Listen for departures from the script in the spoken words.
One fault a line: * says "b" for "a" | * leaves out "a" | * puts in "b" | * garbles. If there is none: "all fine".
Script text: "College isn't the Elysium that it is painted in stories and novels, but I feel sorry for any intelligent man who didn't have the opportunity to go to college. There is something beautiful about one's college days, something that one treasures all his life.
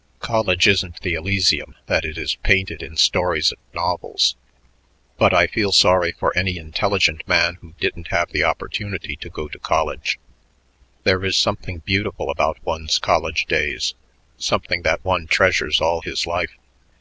all fine